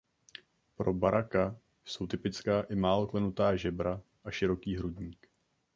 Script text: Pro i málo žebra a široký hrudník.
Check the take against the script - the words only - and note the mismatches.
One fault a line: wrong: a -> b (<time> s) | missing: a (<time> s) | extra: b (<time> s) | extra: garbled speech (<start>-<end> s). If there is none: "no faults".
extra: baraka jsou typická (0.9 s)
extra: klenutá (3.1 s)